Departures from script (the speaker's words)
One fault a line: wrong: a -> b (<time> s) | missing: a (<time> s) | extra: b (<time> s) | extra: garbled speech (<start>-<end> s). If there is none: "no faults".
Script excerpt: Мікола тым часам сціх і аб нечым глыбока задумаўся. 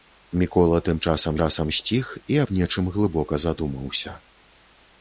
extra: часам (1.4 s)